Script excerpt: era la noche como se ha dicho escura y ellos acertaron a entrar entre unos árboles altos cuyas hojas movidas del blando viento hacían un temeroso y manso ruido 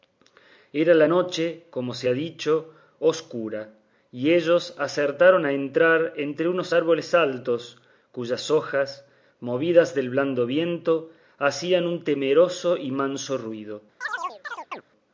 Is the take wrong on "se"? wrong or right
right